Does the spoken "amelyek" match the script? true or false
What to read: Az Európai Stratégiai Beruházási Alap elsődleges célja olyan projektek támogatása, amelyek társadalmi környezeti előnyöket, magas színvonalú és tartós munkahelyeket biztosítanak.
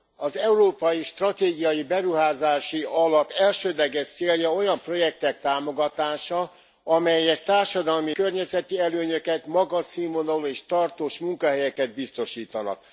true